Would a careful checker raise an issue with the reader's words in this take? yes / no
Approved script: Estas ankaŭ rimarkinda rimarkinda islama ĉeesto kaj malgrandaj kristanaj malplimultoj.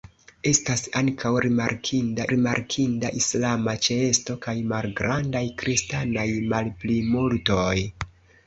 no